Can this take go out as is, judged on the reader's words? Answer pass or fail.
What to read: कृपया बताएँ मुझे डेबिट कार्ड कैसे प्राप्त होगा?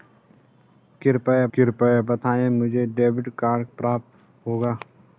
fail